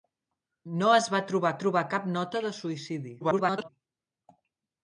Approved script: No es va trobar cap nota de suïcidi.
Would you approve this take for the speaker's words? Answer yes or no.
no